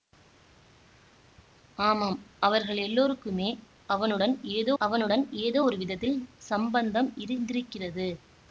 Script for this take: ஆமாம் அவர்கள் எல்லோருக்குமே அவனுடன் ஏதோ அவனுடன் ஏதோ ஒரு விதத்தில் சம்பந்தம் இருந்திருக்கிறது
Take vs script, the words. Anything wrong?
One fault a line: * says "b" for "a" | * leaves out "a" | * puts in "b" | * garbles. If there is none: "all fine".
all fine